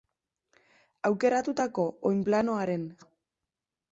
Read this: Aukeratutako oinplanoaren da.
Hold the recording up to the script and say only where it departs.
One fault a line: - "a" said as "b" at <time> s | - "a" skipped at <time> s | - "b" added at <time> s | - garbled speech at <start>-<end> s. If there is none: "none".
none